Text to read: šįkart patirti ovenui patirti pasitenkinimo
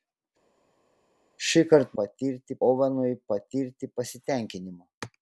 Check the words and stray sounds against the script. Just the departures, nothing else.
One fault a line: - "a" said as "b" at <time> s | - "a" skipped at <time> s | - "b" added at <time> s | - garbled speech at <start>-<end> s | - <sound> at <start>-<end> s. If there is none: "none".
none